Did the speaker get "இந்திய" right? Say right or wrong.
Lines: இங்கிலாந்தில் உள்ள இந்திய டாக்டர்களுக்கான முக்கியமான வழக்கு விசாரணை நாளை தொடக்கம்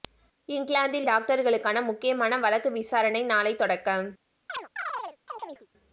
wrong